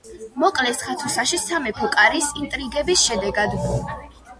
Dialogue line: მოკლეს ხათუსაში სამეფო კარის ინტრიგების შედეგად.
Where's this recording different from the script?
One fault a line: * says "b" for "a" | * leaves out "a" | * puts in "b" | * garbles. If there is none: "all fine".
all fine